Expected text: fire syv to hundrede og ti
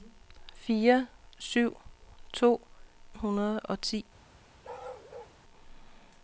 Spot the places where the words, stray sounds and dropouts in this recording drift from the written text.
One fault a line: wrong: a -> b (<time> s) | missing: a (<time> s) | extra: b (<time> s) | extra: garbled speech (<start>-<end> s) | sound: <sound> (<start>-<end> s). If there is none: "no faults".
sound: bark (4.6-5.4 s)